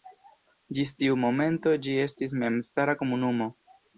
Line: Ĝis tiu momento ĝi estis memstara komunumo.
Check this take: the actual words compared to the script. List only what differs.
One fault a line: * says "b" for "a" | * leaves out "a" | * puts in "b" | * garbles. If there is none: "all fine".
all fine